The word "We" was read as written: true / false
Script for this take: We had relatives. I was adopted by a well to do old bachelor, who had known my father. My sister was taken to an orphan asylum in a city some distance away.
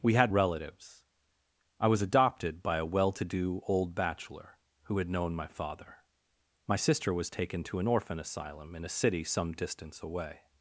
true